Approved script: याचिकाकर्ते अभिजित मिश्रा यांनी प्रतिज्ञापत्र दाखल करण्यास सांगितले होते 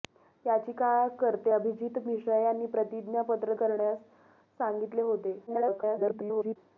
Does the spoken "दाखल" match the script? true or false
false